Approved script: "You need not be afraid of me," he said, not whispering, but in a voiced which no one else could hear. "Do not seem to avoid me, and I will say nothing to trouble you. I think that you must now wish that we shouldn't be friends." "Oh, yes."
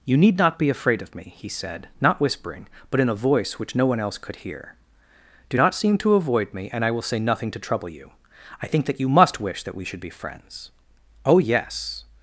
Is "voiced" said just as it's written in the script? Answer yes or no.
no